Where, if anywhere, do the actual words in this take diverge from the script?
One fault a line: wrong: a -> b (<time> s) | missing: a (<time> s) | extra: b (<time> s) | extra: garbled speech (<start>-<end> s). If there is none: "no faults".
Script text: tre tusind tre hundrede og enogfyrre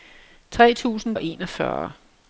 missing: tre hundrede (1.1 s)